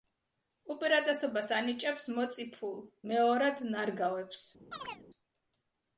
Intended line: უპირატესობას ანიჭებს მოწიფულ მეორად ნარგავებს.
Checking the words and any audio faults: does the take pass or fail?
fail